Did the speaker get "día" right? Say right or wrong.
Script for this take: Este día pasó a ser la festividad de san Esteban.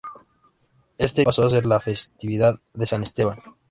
wrong